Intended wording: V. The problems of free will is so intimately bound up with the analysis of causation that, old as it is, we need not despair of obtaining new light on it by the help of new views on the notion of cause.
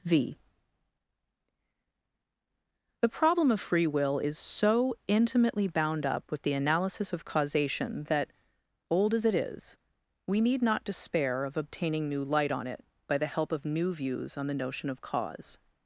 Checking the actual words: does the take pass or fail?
fail